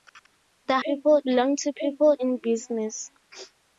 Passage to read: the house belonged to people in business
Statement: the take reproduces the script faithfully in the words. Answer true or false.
false